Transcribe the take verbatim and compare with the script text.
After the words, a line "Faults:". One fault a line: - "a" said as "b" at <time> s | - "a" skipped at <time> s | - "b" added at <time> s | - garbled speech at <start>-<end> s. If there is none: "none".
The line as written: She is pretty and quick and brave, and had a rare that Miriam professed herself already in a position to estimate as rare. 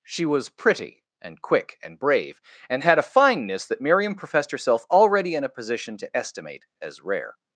She was pretty and quick and brave, and had a fineness that Miriam professed herself already in a position to estimate as rare.
Faults:
- "is" said as "was" at 0.2 s
- "rare" said as "fineness" at 3.0 s